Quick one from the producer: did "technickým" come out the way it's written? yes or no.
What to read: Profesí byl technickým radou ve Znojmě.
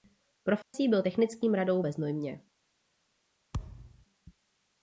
yes